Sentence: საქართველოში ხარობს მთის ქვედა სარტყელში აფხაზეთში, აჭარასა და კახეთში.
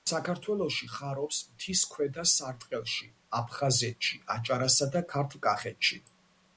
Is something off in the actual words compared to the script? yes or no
yes